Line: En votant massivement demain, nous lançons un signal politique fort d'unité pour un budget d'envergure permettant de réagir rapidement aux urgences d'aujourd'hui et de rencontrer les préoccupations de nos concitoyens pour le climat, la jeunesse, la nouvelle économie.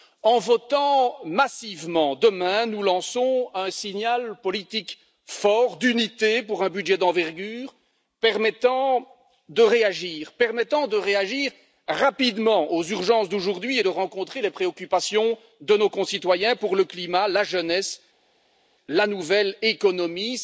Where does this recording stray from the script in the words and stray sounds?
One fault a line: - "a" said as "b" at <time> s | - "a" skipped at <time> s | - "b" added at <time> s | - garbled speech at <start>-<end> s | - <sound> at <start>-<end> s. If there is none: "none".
none